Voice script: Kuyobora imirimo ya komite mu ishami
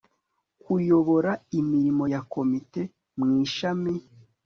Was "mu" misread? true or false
false